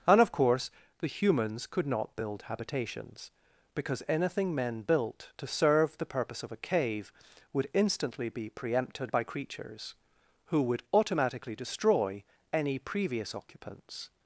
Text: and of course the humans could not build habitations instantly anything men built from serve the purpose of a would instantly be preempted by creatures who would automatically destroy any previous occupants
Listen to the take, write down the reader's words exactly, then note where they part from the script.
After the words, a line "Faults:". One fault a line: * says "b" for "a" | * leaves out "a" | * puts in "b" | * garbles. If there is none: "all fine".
and of course the humans could not build habitations because anything men built to serve the purpose of a cave would instantly be preempted by creatures who would automatically destroy any previous occupants
Faults:
* says "because" for "instantly"
* says "to" for "from"
* puts in "cave"